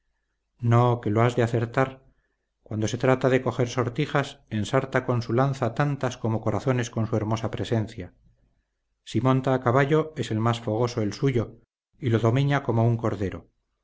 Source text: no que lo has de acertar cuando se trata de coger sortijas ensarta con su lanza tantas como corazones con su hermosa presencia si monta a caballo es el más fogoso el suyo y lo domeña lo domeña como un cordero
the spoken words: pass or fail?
fail